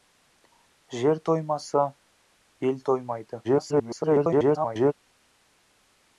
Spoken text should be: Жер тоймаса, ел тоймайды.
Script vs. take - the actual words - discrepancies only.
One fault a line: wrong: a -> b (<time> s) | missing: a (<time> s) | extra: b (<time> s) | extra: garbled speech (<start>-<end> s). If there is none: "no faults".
extra: garbled speech (3.4-4.9 s)